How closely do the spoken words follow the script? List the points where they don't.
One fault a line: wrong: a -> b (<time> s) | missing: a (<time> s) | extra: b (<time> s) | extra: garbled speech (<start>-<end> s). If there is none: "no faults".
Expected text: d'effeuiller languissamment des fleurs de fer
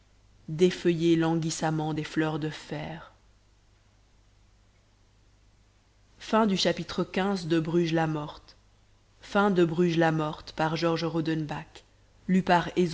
no faults